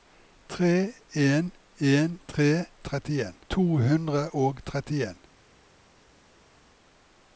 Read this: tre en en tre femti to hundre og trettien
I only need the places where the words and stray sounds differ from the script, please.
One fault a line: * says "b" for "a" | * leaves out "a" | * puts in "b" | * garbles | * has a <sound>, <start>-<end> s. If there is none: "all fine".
* says "trettien" for "femti"